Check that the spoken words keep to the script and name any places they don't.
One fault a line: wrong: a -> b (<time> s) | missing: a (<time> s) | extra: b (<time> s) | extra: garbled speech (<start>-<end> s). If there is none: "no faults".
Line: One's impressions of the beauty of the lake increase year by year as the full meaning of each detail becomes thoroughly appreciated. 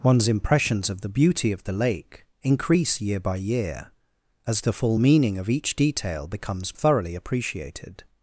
no faults